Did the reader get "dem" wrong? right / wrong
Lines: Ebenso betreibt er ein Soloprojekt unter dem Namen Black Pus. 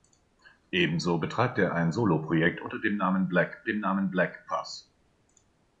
right